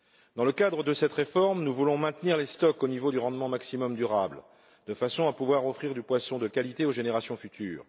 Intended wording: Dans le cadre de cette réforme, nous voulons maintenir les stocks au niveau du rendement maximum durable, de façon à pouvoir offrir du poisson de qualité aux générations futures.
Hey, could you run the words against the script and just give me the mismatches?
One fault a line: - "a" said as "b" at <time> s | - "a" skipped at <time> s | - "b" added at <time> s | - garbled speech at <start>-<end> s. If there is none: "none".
none